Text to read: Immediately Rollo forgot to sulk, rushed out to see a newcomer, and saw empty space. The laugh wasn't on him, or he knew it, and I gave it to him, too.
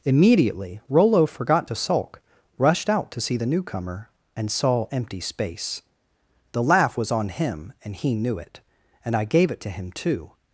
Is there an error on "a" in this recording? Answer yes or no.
yes